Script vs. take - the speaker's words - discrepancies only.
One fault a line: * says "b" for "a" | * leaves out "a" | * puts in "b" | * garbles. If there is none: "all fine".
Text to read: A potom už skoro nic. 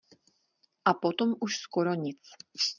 all fine